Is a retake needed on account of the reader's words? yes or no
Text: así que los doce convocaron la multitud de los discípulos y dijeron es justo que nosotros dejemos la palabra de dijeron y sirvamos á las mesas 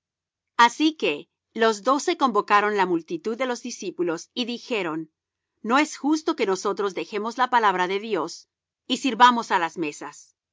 yes